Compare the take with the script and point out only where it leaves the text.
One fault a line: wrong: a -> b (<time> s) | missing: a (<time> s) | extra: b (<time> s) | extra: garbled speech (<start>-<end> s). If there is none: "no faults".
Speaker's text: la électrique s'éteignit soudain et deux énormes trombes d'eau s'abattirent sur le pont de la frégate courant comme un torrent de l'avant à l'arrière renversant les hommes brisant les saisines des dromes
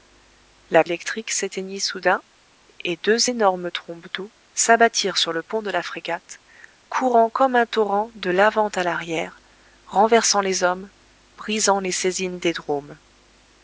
no faults